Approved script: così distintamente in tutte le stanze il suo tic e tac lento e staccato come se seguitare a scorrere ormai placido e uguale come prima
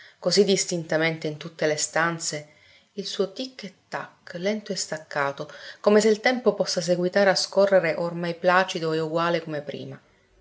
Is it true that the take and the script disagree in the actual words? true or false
true